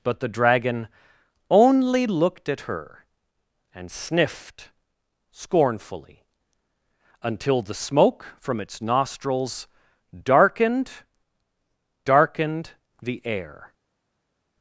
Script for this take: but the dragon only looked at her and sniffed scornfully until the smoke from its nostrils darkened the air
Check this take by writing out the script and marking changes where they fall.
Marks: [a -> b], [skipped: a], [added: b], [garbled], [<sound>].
but the dragon only looked at her and sniffed scornfully until the smoke from its nostrils darkened [added: darkened] the air